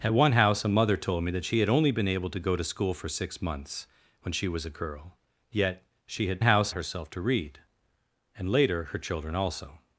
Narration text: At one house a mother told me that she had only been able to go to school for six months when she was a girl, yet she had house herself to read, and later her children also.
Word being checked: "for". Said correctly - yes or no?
yes